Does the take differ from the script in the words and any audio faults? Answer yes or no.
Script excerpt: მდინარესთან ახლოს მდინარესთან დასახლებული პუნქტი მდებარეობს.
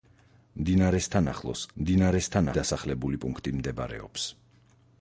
no